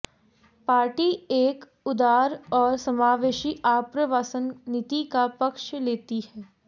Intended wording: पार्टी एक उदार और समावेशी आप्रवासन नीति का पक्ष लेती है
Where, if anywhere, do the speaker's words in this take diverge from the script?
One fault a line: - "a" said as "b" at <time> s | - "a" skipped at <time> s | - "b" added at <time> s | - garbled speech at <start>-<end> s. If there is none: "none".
none